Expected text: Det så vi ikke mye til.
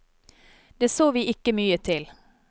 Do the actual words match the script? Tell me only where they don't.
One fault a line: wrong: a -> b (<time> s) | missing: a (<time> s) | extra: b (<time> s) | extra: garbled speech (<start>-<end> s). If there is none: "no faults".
no faults